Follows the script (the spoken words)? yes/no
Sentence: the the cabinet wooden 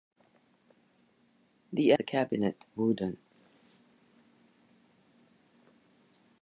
yes